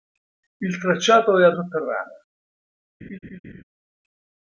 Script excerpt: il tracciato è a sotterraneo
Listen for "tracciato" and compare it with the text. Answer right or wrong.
right